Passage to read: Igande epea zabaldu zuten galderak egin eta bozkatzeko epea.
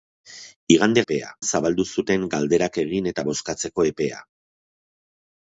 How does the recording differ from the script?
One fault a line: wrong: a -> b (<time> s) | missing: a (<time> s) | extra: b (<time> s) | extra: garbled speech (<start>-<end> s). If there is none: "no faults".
no faults